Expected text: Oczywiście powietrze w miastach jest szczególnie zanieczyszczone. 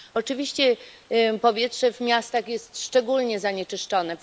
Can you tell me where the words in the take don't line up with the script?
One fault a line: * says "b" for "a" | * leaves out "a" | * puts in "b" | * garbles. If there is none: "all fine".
all fine